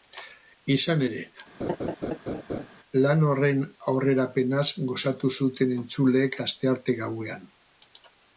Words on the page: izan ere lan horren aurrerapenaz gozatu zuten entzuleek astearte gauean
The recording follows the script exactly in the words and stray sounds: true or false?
false